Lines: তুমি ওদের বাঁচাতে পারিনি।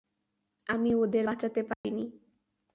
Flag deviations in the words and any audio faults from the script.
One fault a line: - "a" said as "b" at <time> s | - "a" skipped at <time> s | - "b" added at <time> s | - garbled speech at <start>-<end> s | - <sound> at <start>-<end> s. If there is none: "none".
- "তুমি" said as "আমি" at 0.7 s
- dropout at 1.7-1.8 s